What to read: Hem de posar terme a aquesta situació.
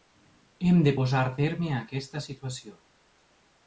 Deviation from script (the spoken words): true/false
false